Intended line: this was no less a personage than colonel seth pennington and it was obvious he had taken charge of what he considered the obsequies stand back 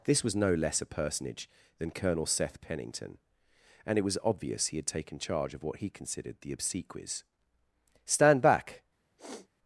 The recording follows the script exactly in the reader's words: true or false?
true